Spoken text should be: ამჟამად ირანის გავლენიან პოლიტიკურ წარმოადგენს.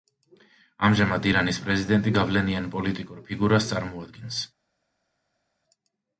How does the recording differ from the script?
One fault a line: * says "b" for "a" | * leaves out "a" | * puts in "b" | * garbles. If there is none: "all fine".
* puts in "პრეზიდენტი"
* puts in "ფიგურას"